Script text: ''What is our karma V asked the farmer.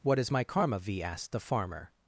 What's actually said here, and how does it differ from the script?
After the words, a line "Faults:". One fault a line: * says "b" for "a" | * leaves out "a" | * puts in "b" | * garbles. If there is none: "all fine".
''What is my karma V asked the farmer.
Faults:
* says "my" for "our"